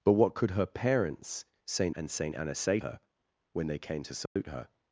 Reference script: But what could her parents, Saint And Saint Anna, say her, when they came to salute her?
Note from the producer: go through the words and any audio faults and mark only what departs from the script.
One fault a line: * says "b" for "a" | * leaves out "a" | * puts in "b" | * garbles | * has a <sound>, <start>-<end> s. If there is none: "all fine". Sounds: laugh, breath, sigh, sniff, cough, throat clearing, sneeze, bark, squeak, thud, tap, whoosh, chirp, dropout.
* has a dropout, 4.3-4.4 s